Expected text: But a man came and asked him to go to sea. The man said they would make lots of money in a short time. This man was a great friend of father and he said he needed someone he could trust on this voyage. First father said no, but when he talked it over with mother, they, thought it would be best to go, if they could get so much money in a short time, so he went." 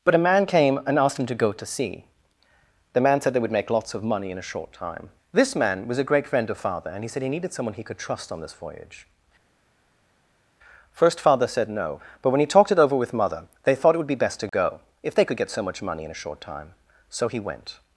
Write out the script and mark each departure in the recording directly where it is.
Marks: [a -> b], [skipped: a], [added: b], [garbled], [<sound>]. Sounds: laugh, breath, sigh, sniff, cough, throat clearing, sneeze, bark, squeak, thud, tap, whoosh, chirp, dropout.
But a man came and asked him to go to sea. The man said they would make lots of money in a short time. This man was a great friend of father and he said he needed someone he could trust on this voyage. First father said no, but when he talked it over with mother, they, thought it would be best to go, if they could get so much money in a short time, so he went."